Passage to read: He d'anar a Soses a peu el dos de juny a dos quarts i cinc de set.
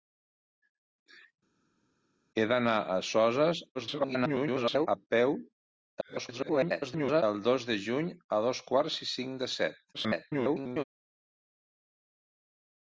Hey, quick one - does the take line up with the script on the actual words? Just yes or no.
no